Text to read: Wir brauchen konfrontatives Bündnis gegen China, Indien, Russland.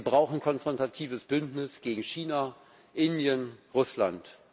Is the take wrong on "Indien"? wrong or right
right